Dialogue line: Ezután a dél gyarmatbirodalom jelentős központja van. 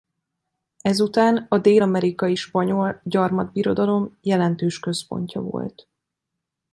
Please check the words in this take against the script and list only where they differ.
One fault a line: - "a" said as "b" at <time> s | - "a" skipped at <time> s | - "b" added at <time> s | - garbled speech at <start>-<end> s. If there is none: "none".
- "amerikai spanyol" added at 1.8 s
- "van" said as "volt" at 5.4 s